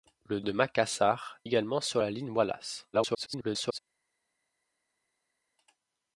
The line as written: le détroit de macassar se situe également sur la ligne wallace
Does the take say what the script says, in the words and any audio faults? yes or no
no